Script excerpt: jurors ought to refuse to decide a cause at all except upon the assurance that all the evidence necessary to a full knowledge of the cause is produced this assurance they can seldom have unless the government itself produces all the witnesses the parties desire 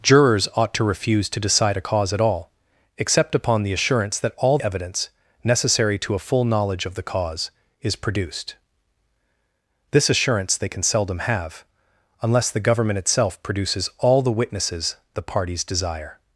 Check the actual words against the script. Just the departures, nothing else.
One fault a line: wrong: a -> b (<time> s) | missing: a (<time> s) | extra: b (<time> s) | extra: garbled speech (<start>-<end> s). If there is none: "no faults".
missing: the (4.6 s)